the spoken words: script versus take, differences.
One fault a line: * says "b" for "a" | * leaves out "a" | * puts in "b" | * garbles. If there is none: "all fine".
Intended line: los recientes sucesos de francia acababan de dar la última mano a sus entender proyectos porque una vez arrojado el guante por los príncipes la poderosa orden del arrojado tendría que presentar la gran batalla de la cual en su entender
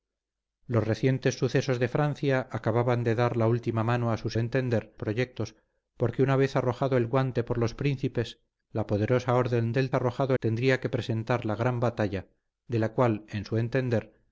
all fine